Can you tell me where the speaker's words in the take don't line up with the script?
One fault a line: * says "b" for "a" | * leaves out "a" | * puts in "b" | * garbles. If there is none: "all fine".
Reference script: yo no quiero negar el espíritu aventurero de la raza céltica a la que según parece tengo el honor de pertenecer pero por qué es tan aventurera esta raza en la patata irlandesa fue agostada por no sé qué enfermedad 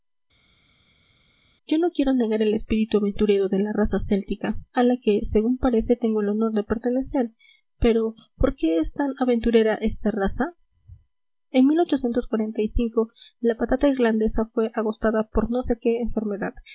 all fine